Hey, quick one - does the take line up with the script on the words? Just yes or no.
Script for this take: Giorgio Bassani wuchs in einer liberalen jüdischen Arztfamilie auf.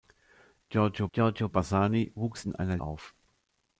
no